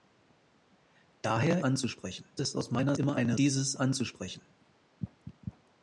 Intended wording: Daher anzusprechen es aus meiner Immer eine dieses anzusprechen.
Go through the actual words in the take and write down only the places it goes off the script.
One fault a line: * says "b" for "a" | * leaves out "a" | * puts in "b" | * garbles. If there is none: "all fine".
all fine